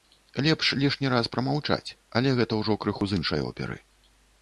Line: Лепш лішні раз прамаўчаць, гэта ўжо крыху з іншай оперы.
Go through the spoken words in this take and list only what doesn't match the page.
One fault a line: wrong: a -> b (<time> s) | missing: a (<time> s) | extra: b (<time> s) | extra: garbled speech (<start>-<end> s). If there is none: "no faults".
extra: але (2.2 s)